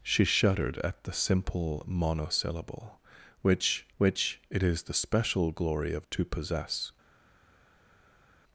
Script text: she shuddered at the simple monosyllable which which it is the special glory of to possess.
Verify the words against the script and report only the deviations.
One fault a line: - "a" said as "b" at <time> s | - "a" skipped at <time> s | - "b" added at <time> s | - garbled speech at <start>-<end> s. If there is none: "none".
none